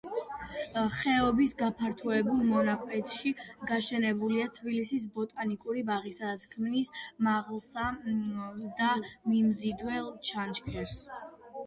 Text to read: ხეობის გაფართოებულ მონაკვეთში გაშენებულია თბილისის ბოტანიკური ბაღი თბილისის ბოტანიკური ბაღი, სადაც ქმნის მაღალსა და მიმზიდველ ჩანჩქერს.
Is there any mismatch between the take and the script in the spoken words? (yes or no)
yes